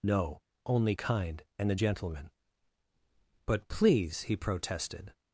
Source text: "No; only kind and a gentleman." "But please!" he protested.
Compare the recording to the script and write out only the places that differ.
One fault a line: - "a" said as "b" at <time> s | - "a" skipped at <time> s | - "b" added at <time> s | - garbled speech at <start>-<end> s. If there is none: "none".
none